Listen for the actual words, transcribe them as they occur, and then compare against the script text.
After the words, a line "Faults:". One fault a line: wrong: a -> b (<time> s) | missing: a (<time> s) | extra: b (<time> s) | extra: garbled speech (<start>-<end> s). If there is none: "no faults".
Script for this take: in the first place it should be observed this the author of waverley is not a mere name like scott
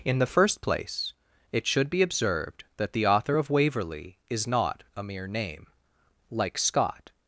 in the first place it should be observed that the author of waverley is not a mere name like scott
Faults:
wrong: this -> that (2.8 s)